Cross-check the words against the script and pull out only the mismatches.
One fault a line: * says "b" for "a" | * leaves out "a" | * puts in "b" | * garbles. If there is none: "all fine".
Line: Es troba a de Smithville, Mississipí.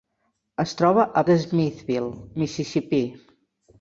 all fine